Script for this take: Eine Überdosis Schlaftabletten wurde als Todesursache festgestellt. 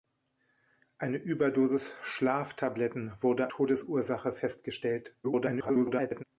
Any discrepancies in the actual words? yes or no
yes